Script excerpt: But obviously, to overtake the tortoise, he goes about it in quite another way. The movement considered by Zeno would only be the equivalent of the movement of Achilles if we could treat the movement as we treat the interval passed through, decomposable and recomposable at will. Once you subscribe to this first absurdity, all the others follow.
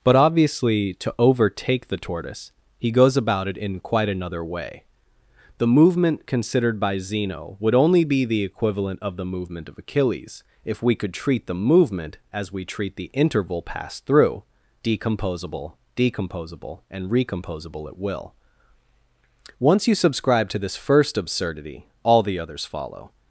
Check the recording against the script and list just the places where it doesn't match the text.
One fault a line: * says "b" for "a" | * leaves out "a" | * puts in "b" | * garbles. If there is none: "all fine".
* puts in "decomposable"